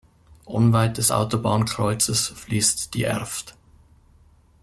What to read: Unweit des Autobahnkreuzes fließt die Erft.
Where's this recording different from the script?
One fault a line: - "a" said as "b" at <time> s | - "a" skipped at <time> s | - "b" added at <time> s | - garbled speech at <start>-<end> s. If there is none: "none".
none